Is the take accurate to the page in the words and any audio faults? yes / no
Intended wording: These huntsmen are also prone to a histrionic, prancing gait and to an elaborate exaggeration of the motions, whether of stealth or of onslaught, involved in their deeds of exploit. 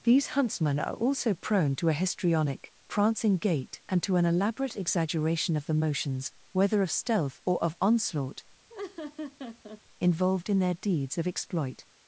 no